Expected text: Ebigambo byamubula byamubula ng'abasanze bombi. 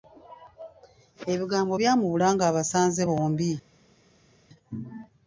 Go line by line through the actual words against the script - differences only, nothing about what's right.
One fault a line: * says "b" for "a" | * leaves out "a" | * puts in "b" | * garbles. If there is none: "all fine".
* leaves out "byamubula"